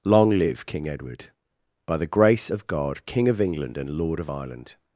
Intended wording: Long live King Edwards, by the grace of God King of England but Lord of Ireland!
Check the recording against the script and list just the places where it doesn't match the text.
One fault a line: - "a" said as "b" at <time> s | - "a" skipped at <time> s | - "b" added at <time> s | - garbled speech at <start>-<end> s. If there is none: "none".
- "Edwards" said as "Edward" at 0.9 s
- "but" said as "and" at 3.8 s